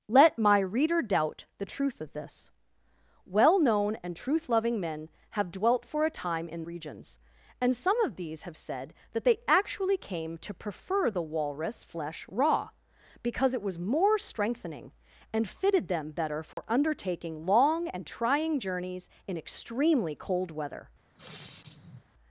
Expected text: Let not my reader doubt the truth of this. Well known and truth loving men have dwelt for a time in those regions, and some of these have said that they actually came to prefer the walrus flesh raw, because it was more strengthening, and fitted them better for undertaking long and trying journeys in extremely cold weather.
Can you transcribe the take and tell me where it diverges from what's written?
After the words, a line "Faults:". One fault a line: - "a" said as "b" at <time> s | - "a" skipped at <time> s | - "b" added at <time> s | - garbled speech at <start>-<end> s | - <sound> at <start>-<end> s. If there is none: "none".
Let my reader doubt the truth of this. Well known and truth loving men have dwelt for a time in regions, and some of these have said that they actually came to prefer the walrus flesh raw, because it was more strengthening, and fitted them better for undertaking long and trying journeys in extremely cold weather.
Faults:
- "not" skipped at 0.4 s
- "those" skipped at 6.6 s
- dropout at 16.5-16.6 s
- sigh at 21.1-22.1 s